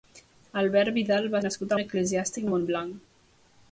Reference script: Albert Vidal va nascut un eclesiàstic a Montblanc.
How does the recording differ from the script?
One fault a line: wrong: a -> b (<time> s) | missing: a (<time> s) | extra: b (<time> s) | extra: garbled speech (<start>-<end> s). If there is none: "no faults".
no faults